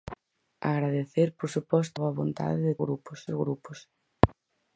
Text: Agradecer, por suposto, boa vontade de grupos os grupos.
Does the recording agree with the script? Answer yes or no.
yes